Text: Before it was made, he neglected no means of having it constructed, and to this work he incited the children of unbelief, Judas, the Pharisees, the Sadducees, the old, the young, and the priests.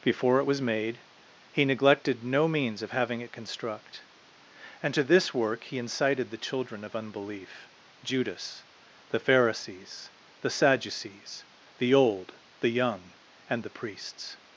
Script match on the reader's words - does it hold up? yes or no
no